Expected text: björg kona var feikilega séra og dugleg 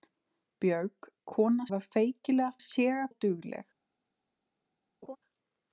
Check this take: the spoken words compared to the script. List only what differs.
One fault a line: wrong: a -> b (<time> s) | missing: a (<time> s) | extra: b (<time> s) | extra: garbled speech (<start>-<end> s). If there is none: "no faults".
no faults